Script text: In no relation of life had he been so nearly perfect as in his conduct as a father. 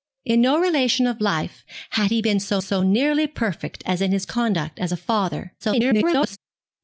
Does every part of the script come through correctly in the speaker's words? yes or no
no